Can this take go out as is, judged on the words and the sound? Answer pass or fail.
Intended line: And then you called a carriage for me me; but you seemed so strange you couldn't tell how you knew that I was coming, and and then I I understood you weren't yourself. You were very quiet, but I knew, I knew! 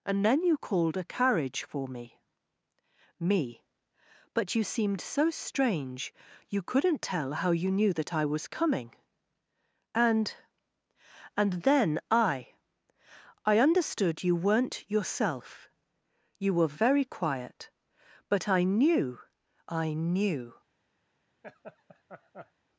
fail